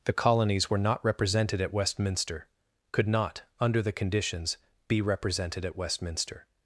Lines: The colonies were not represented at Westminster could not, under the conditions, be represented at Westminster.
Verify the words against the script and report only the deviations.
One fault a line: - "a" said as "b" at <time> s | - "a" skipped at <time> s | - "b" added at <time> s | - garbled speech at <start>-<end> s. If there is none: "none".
none